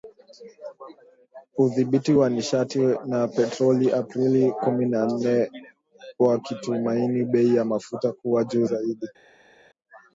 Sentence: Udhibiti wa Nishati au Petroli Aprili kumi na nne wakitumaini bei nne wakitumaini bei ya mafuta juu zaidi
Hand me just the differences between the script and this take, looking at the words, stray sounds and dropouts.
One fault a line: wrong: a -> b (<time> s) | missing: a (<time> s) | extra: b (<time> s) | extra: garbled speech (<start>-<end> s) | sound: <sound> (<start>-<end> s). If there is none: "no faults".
wrong: au -> na (3.1 s)
missing: nne wakitumaini bei (7.6 s)
extra: kuwa (8.1 s)